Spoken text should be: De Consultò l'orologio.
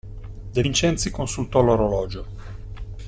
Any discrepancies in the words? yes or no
yes